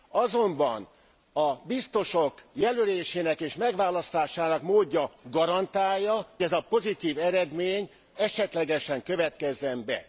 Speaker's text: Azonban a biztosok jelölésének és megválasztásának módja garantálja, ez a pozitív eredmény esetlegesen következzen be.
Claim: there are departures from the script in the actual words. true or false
false